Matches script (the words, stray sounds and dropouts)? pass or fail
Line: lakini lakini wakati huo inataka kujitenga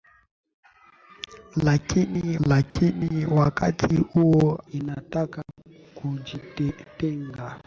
fail